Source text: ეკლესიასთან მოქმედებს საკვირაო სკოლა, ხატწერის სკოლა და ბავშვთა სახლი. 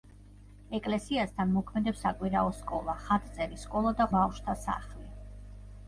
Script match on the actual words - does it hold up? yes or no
yes